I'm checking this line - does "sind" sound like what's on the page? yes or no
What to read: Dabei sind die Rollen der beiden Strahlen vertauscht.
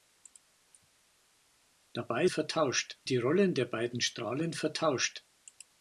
no